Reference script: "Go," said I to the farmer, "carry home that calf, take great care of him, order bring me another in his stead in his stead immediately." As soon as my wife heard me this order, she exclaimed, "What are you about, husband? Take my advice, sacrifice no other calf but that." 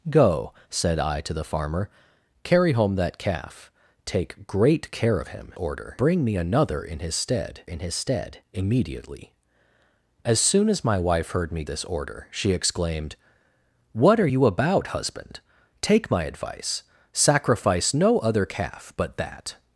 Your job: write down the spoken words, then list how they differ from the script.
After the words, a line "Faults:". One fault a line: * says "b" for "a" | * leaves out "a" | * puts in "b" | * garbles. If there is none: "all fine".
"Go," said I to the farmer, "carry home that calf, take great care of him, order bring me another in his stead in his stead immediately." As soon as my wife heard me this order, she exclaimed, "What are you about, husband? Take my advice, sacrifice no other calf but that."
Faults:
all fine